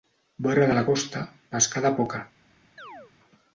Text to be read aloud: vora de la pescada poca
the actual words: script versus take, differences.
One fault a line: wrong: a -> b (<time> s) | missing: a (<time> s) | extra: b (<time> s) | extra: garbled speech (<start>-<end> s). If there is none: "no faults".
extra: costa (0.9 s)